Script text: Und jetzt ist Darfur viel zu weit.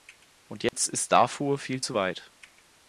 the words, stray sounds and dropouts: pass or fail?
fail